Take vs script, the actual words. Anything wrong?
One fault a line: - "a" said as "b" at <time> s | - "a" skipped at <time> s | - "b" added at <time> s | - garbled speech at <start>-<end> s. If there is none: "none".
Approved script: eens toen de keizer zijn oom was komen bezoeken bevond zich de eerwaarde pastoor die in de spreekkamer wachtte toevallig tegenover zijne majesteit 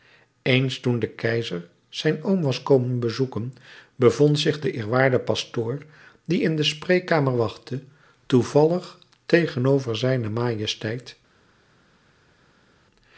none